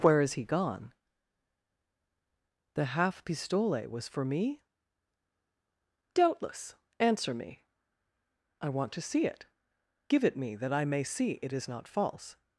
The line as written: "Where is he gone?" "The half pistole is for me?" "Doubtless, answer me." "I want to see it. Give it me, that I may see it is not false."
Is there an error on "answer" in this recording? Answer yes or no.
no